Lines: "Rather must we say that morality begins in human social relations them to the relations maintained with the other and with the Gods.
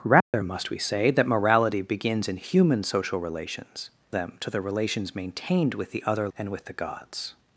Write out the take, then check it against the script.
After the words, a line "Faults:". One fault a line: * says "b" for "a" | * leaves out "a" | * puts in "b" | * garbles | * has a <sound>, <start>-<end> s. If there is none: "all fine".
"Rather must we say that morality begins in human social relations them to the relations maintained with the other and with the Gods.
Faults:
* has a dropout, 0.2-0.3 s